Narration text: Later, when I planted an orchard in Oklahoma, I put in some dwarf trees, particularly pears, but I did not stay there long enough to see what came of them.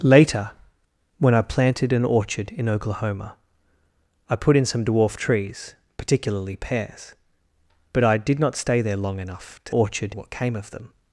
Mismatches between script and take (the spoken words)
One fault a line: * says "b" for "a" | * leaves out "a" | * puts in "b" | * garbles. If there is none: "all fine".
* says "orchard" for "see"